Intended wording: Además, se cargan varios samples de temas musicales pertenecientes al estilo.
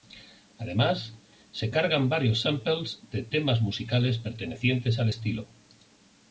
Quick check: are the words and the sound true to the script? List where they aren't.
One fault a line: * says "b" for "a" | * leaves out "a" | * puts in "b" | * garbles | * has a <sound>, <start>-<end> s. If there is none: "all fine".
all fine